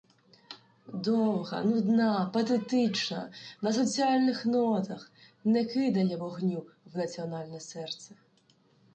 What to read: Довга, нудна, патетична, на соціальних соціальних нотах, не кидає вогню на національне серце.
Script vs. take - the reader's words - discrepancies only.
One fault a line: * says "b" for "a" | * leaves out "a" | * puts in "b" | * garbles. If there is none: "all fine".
* leaves out "соціальних"
* says "в" for "на"